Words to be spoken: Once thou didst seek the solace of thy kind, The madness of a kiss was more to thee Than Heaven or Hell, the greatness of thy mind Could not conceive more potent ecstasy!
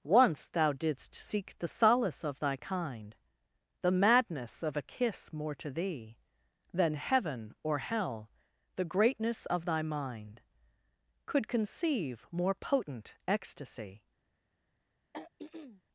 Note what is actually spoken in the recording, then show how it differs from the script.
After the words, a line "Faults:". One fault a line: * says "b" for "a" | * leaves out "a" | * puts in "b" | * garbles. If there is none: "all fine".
Once thou didst seek the solace of thy kind, The madness of a kiss more to thee Than Heaven or Hell, the greatness of thy mind Could conceive more potent ecstasy!
Faults:
* leaves out "was"
* leaves out "not"